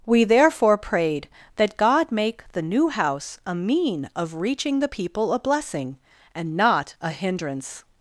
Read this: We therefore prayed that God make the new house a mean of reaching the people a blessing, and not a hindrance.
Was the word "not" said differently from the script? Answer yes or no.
no